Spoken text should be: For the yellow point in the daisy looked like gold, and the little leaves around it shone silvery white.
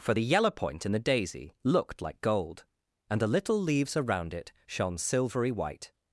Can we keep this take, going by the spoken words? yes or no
yes